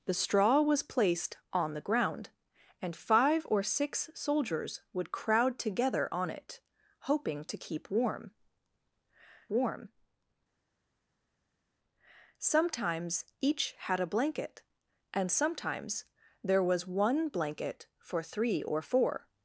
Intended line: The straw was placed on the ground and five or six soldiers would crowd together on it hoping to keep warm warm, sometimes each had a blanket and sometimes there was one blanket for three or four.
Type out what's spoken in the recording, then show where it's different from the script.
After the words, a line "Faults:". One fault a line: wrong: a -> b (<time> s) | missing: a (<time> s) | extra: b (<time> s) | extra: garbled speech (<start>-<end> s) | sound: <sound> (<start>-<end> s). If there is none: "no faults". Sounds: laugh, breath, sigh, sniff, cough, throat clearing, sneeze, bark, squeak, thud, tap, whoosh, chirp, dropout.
The straw was placed on the ground and five or six soldiers would crowd together on it hoping to keep warm warm, sometimes each had a blanket and sometimes there was one blanket for three or four.
Faults:
no faults